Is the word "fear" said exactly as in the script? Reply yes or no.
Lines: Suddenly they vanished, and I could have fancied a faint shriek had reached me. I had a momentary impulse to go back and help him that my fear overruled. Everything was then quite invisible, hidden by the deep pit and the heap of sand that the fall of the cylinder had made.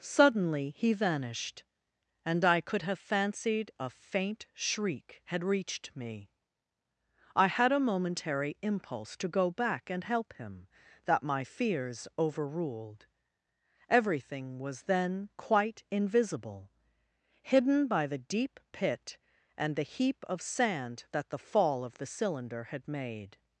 no